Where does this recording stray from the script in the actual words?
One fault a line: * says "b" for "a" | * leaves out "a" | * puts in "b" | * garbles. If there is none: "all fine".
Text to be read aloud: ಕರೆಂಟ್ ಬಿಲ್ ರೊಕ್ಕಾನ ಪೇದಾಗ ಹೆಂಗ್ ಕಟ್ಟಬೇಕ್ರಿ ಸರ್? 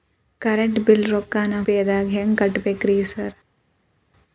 all fine